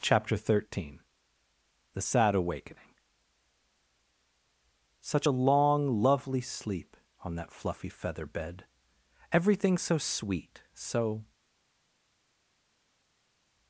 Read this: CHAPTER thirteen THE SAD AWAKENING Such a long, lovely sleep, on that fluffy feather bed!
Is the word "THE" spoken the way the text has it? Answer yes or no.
yes